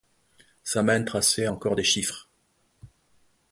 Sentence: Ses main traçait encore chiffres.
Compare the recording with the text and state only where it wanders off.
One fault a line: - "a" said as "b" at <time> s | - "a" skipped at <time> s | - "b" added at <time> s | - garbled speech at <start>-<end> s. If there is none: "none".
- "Ses" said as "Sa" at 0.6 s
- "des" added at 1.7 s